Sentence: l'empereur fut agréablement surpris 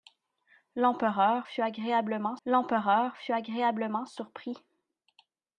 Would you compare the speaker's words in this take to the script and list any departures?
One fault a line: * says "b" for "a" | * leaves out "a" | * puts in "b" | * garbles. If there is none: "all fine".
* puts in "l'empereur fut agréablement"